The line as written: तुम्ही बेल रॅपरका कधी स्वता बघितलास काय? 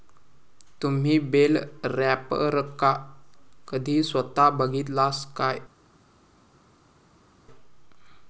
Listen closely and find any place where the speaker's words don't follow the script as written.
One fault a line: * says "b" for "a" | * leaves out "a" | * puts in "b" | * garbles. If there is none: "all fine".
all fine